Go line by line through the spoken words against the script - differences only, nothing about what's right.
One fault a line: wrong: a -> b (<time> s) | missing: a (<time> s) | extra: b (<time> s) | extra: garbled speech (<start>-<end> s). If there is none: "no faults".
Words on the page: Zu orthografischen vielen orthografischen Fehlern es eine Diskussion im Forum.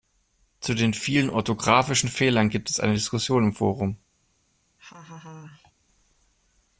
wrong: orthografischen -> den (0.7 s)
extra: gibt (2.5 s)